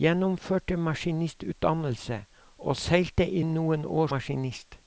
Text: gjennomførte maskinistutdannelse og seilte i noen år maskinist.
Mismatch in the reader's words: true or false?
false